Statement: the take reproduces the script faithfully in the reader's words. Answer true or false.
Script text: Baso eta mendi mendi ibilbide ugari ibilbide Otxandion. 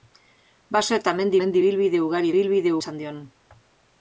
true